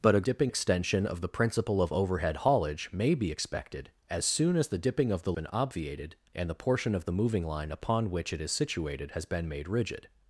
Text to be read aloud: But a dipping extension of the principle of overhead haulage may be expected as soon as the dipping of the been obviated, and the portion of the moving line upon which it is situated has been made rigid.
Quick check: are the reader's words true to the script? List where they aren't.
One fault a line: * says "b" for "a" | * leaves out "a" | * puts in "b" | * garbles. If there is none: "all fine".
all fine